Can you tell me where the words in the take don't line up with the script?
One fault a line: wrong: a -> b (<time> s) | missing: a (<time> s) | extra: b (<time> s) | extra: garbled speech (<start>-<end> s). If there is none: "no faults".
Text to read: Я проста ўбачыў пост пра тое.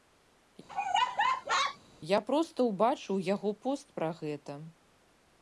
extra: яго (3.3 s)
wrong: тое -> гэта (4.2 s)